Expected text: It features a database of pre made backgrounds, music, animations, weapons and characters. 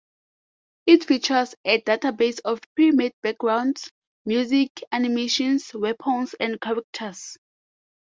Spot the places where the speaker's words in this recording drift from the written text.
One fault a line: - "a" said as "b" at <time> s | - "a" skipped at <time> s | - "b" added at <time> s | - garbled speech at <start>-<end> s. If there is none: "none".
none